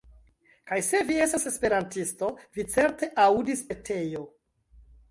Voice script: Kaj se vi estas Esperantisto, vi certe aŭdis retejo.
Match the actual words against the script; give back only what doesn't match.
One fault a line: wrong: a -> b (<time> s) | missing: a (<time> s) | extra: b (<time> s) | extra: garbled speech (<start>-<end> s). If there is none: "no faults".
no faults